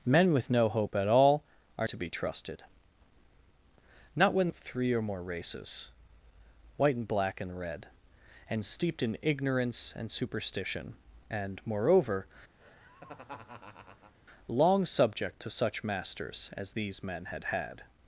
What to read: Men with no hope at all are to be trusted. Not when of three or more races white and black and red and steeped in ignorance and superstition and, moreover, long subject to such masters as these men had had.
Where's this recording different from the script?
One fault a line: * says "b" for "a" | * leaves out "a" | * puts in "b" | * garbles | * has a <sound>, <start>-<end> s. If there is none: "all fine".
* has a laugh, 12.6-14.1 s